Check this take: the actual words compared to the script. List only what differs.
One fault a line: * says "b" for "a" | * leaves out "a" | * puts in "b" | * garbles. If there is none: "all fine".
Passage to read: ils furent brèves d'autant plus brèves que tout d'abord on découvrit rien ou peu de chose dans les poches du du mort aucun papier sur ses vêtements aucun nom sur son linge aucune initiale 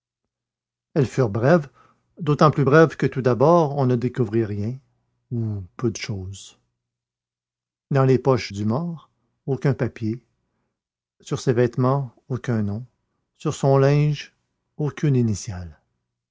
* says "elles" for "ils"
* puts in "ne"
* leaves out "du"